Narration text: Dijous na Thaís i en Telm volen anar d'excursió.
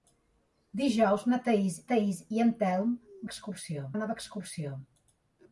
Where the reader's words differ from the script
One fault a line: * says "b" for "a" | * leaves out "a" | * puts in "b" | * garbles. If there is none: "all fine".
* puts in "Thaís"
* says "d'excursió" for "volen"